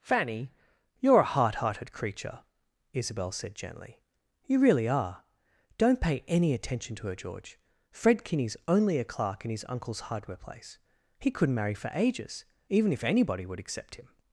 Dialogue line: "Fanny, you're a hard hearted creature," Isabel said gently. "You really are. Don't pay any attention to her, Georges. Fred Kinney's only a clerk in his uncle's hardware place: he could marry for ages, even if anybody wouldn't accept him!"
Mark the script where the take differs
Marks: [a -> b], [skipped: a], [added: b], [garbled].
"Fanny, you're a hard hearted creature," Isabel said gently. "You really are. Don't pay any attention to her, [Georges. -> George] Fred Kinney's only a clerk in his uncle's hardware place: he [could -> couldn't] marry for ages, even if anybody [wouldn't -> would] accept him!"